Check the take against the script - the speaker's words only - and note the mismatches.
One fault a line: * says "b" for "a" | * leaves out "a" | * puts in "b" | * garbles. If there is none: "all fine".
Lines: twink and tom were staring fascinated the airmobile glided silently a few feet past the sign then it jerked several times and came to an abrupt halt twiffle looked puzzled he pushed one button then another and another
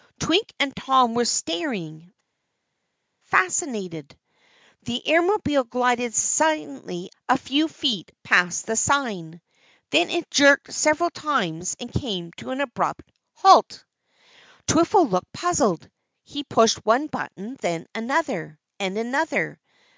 all fine